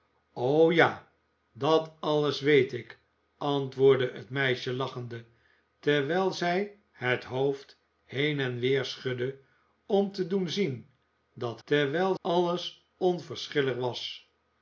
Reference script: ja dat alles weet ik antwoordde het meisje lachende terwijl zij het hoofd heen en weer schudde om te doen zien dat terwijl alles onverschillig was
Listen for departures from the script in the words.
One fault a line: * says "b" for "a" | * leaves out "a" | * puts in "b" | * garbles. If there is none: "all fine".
all fine